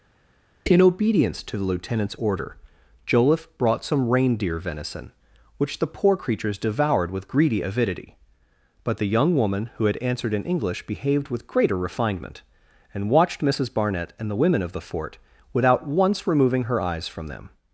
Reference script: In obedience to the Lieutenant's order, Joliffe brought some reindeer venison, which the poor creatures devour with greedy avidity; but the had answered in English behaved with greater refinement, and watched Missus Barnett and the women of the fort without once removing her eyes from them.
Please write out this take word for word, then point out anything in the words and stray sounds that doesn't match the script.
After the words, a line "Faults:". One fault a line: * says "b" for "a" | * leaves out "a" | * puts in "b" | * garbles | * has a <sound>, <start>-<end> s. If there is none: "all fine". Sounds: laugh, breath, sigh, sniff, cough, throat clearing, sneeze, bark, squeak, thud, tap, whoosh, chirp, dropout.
In obedience to the Lieutenant's order, Joliffe brought some reindeer venison, which the poor creatures devoured with greedy avidity; but the young woman who had answered in English behaved with greater refinement, and watched Missus Barnett and the women of the fort without once removing her eyes from them.
Faults:
* says "devoured" for "devour"
* puts in "young woman who"